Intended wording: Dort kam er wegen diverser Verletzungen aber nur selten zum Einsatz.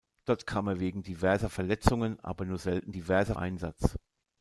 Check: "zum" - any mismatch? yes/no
yes